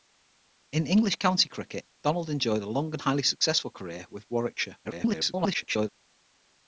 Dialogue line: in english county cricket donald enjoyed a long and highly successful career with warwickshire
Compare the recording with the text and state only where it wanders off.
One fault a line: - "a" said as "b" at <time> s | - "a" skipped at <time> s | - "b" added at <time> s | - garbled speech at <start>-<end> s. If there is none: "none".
- garbled speech at 4.8-5.9 s